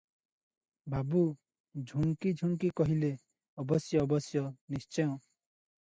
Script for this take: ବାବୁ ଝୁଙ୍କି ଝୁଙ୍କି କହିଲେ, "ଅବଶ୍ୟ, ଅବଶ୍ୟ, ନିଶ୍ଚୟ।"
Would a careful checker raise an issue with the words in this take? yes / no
no